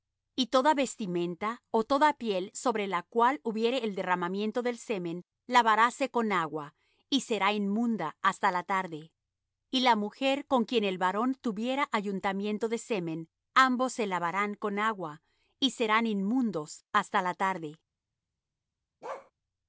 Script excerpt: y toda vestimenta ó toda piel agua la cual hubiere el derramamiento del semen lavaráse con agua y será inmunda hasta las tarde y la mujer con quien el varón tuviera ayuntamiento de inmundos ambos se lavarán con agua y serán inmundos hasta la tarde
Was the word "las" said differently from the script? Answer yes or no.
yes